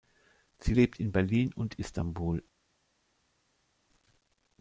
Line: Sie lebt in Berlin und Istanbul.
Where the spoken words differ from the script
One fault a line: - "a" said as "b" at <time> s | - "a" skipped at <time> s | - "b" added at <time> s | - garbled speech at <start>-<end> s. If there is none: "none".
none